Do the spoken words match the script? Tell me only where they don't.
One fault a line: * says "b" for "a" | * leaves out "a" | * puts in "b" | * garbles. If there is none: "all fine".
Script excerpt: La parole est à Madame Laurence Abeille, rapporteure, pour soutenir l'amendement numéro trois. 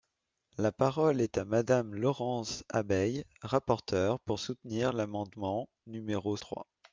all fine